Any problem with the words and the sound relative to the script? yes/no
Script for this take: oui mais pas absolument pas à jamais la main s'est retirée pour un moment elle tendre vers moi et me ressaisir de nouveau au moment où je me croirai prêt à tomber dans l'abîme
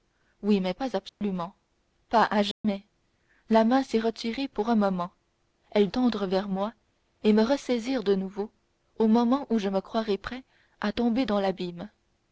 yes